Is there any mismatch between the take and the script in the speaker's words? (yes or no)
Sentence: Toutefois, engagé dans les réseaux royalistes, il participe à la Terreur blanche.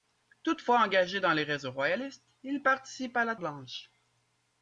yes